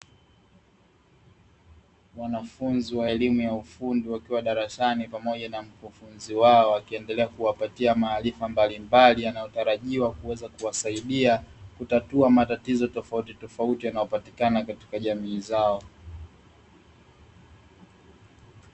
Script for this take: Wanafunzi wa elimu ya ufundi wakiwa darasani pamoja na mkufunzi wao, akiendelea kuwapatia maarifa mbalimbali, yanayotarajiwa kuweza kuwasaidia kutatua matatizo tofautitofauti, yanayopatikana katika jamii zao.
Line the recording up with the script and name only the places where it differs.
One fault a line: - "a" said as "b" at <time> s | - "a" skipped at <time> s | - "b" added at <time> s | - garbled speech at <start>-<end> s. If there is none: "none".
none